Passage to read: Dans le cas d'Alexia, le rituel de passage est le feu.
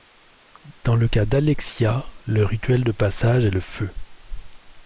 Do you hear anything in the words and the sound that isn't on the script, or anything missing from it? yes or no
no